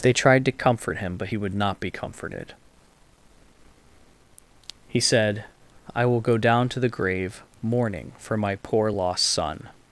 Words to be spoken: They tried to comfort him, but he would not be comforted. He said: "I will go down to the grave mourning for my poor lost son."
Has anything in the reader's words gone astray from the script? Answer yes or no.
no